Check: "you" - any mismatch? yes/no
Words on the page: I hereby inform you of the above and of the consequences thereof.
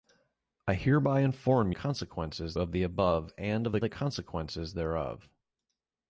yes